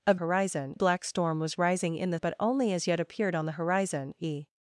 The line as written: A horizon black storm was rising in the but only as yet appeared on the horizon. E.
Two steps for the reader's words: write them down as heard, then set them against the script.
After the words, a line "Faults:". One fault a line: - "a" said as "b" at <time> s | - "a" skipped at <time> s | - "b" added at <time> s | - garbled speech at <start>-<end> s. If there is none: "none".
A horizon black storm was rising in the but only as yet appeared on the horizon. E.
Faults:
none